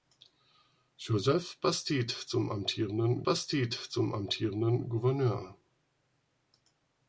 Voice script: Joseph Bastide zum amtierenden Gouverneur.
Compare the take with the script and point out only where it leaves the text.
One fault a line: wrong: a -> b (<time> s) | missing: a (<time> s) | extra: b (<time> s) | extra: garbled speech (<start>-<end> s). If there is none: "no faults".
extra: Bastide zum amtierenden (3.2 s)